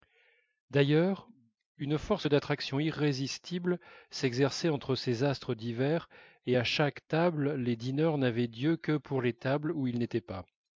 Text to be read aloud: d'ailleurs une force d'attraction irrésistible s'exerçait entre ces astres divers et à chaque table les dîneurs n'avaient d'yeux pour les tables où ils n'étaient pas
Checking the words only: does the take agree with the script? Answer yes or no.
no